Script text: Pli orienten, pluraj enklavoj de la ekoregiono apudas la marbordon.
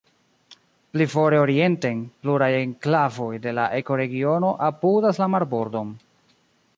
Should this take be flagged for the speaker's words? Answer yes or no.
yes